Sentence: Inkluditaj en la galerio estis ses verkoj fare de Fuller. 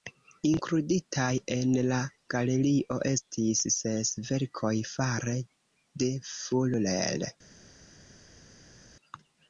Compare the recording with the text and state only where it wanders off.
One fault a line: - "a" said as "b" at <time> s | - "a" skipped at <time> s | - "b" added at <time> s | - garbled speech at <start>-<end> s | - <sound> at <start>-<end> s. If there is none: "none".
none